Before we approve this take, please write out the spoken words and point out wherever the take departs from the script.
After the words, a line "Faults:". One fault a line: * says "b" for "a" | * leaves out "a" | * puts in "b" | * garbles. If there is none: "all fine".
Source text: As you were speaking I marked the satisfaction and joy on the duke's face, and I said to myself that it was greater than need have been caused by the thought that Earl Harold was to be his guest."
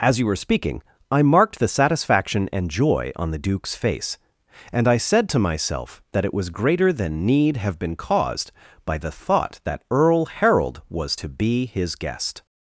As you were speaking I marked the satisfaction and joy on the duke's face, and I said to myself that it was greater than need have been caused by the thought that Earl Harold was to be his guest."
Faults:
all fine